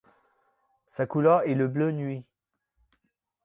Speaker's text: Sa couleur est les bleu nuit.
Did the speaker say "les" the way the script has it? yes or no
no